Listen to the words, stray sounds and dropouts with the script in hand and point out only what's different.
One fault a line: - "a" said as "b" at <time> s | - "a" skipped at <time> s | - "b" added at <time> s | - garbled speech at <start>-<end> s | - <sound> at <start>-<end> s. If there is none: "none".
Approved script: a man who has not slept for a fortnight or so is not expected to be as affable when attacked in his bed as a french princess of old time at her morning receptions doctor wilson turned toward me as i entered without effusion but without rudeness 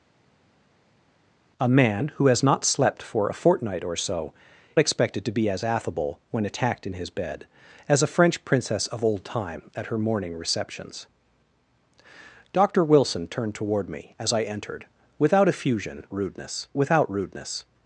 - "is not" skipped at 4.3 s
- "but" said as "rudeness" at 16.1 s